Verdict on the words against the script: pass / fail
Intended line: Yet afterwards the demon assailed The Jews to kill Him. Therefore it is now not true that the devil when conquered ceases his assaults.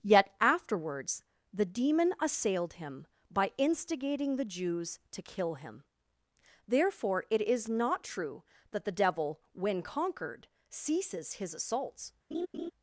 fail